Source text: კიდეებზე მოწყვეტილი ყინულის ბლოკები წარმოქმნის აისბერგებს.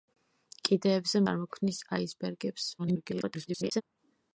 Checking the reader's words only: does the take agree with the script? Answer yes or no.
no